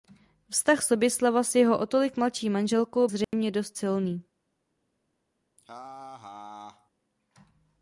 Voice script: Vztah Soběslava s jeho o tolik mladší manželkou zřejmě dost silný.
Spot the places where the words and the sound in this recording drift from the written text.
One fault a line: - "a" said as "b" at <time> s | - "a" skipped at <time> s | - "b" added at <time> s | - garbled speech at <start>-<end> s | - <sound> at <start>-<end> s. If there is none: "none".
- dropout at 3.2-3.3 s
- laugh at 5.6-6.9 s